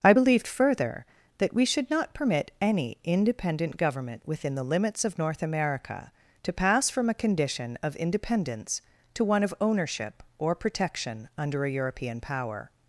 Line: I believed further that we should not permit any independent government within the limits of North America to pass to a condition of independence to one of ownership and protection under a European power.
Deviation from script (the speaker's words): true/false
true